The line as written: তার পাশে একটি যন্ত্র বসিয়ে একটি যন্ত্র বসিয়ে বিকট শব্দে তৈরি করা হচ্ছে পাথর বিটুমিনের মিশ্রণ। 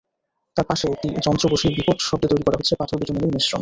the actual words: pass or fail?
fail